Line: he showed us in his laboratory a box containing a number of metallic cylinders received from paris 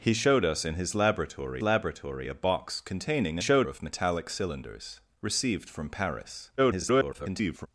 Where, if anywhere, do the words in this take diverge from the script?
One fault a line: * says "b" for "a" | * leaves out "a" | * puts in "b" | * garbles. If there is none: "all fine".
* puts in "laboratory"
* says "showed" for "number"
* garbles